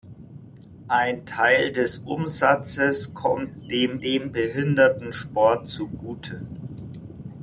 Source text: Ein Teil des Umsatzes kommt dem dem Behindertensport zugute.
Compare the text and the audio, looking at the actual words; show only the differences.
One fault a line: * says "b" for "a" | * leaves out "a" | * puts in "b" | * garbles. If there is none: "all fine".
all fine